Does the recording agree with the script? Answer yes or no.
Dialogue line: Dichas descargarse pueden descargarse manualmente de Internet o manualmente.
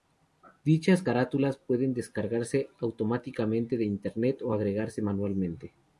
no